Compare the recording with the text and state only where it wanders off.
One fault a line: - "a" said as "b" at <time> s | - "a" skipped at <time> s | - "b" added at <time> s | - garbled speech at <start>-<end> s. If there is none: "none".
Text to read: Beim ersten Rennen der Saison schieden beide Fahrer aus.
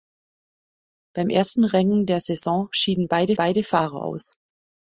- "beide" added at 3.3 s